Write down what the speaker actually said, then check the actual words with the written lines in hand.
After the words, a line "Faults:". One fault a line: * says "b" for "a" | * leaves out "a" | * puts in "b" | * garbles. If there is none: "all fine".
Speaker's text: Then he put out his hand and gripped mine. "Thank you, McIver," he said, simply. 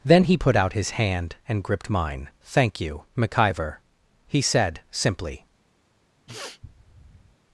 Then he put out his hand and gripped mine. "Thank you, McIver," he said, simply.
Faults:
all fine